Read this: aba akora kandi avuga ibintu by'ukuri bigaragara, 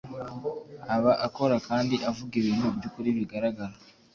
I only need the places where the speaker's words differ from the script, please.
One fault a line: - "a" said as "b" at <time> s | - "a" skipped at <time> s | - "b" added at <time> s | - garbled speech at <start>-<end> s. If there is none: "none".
none